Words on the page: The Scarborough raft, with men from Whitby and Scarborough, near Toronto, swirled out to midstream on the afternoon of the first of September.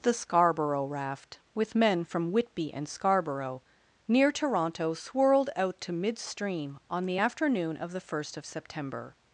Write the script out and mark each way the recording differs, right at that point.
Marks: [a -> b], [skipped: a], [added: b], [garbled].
The Scarborough raft, with men from Whitby and Scarborough, near Toronto, swirled out to midstream on the afternoon of the first of September.